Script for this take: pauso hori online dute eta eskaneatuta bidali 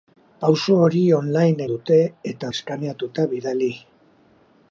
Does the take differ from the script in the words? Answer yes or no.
no